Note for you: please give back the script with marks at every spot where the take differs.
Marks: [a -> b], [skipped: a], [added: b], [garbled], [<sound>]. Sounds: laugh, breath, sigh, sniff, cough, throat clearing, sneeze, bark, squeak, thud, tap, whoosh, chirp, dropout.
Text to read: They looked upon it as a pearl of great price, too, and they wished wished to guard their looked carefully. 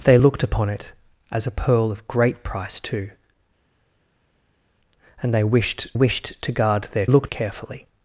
They looked upon it as a pearl of great price, too, and they wished wished to guard their looked carefully.